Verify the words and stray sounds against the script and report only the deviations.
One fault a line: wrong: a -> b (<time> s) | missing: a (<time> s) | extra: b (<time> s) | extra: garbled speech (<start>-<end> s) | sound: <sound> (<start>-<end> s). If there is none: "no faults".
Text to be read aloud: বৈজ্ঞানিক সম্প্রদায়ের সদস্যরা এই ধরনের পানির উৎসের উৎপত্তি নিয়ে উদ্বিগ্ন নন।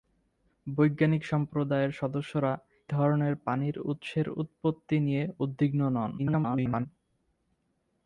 missing: এই (2.5 s)
extra: garbled speech (6.2-6.9 s)